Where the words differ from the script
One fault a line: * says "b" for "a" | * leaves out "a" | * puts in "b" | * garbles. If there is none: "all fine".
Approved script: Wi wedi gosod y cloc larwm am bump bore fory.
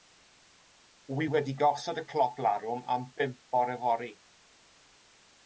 all fine